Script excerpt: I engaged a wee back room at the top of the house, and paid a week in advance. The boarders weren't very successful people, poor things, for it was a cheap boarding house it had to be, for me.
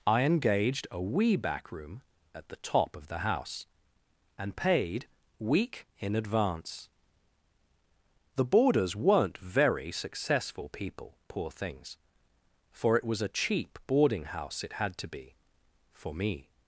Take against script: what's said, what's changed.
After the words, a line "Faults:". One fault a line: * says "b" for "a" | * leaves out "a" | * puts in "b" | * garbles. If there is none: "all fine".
I engaged a wee back room at the top of the house, and paid week in advance. The boarders weren't very successful people, poor things, for it was a cheap boarding house it had to be, for me.
Faults:
* leaves out "a"